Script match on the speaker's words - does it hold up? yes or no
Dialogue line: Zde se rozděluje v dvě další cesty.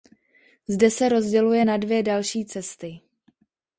no